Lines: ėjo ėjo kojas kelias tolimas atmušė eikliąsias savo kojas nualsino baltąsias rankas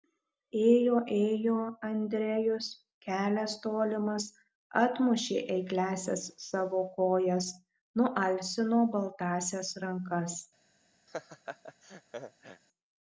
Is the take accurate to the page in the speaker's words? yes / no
no